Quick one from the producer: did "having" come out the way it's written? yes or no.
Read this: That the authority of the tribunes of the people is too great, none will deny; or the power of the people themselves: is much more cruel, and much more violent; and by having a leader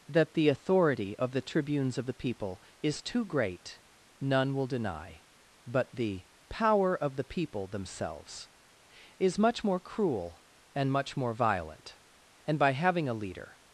yes